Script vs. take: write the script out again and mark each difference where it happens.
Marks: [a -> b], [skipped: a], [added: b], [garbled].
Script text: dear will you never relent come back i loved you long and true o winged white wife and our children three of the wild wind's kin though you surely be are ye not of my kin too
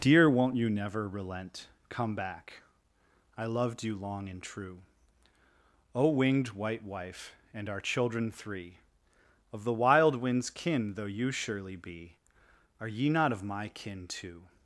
dear [will -> won't] you never relent come back i loved you long and true o winged white wife and our children three of the wild wind's kin though you surely be are ye not of my kin too